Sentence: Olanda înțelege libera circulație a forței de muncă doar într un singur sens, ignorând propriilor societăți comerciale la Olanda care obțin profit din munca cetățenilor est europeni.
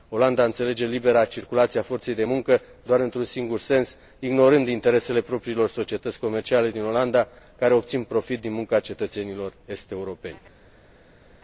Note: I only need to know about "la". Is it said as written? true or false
false